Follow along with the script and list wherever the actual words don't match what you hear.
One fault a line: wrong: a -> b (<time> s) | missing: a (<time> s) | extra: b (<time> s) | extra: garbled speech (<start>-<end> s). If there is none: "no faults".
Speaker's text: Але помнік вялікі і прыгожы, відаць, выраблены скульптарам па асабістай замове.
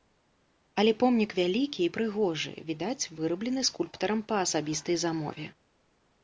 no faults